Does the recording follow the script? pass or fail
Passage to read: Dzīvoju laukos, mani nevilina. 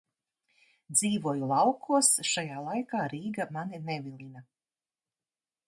fail